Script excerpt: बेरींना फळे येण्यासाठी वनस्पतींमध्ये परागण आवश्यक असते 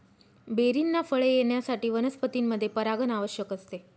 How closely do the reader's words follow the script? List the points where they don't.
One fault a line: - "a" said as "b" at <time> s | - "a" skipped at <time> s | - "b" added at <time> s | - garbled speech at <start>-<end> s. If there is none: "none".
none